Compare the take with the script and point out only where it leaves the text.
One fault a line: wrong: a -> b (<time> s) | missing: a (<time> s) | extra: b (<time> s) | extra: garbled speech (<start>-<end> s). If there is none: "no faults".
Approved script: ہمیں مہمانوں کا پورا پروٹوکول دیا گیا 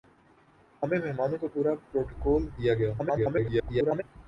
extra: garbled speech (3.0-4.0 s)